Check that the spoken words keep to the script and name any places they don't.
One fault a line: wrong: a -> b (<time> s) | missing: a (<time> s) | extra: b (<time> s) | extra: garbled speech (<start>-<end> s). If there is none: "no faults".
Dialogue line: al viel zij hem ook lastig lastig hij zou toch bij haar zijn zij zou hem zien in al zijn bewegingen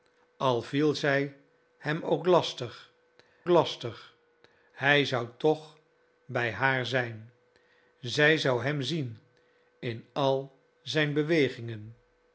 no faults